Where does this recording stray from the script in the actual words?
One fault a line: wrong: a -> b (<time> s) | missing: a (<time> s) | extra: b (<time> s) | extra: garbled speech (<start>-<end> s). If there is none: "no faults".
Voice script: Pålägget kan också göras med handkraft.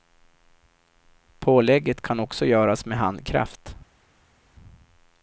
no faults